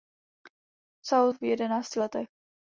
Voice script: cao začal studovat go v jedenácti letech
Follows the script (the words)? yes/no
no